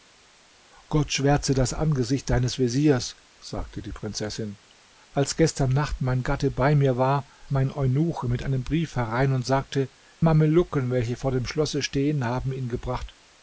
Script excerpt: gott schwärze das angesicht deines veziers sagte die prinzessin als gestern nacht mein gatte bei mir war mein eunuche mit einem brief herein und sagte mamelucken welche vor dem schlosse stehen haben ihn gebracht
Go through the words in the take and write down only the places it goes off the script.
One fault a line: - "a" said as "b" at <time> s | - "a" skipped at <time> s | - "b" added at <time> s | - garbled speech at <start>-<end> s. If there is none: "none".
none